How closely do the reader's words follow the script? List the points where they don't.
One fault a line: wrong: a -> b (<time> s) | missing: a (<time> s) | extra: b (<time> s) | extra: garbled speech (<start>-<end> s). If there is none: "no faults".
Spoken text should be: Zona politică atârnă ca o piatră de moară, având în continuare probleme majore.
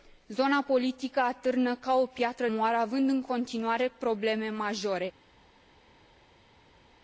missing: de (2.5 s)